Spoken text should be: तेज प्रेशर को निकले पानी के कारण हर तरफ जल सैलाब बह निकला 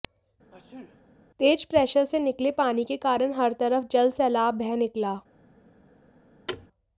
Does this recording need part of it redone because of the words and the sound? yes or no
yes